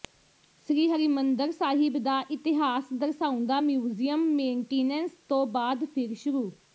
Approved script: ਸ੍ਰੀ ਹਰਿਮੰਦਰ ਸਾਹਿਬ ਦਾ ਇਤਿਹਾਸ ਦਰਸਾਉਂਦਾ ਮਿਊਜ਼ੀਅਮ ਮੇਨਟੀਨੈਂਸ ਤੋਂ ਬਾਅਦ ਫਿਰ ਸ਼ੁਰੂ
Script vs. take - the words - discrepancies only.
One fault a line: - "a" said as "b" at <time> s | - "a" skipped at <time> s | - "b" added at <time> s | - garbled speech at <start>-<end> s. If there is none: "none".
none